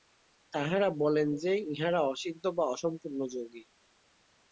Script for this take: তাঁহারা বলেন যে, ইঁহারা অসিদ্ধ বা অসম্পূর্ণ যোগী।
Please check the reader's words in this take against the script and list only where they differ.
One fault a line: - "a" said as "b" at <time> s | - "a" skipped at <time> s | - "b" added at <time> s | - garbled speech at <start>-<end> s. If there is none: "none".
none